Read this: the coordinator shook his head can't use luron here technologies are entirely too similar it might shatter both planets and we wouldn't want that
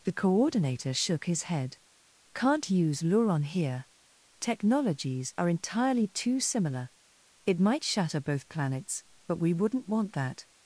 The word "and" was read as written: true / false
false